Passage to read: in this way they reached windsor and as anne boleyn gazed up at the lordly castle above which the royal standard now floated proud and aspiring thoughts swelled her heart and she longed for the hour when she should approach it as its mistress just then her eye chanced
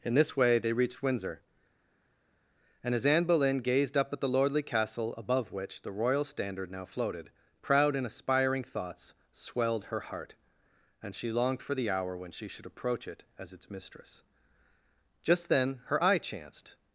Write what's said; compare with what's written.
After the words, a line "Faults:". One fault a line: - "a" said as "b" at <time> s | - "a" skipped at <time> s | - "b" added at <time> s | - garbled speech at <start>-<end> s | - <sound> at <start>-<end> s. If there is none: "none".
in this way they reached windsor and as anne boleyn gazed up at the lordly castle above which the royal standard now floated proud and aspiring thoughts swelled her heart and she longed for the hour when she should approach it as its mistress just then her eye chanced
Faults:
none